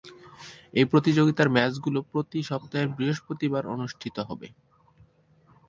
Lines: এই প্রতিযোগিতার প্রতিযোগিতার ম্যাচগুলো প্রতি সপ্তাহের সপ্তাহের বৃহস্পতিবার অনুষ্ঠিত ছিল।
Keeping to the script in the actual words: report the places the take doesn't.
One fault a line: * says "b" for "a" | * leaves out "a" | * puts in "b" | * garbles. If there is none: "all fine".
* leaves out "প্রতিযোগিতার"
* leaves out "সপ্তাহের"
* says "হবে" for "ছিল"